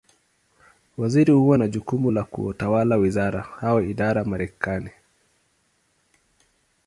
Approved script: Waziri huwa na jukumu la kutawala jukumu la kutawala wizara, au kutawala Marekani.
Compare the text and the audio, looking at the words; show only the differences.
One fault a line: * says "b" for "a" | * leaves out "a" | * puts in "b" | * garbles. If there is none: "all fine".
* leaves out "jukumu la kutawala"
* says "idara" for "kutawala"